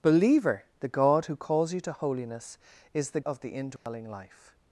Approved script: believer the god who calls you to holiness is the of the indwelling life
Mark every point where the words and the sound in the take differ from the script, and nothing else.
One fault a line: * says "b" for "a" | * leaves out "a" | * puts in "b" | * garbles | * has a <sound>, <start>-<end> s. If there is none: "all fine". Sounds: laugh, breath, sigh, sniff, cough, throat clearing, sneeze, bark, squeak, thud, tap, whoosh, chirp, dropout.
* has a dropout, 3.8-3.9 s